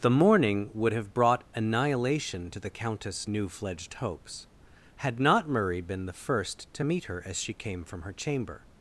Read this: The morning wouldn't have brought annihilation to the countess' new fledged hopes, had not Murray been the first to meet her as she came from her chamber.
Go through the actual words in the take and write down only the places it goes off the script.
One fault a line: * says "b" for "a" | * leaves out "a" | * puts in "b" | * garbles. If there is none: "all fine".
* says "would" for "wouldn't"